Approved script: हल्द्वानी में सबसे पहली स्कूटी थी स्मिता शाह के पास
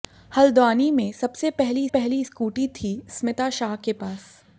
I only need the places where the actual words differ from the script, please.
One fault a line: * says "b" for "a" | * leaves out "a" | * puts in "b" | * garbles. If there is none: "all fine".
* puts in "पहली"